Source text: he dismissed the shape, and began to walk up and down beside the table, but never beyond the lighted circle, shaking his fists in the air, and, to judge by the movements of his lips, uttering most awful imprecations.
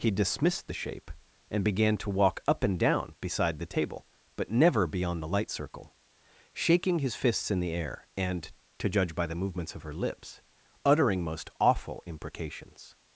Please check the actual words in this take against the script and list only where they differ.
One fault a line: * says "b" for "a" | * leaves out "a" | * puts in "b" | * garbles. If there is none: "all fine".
* says "light" for "lighted"
* says "her" for "his"